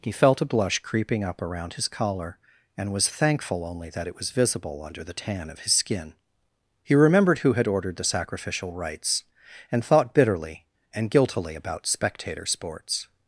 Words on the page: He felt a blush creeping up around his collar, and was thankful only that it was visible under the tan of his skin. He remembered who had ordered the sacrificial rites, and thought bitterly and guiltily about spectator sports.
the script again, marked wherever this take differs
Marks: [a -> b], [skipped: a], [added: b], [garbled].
He felt a blush creeping up around his collar, and was thankful only that it was visible under the tan of his skin. He remembered who had ordered the sacrificial rites, and thought bitterly and guiltily about spectator sports.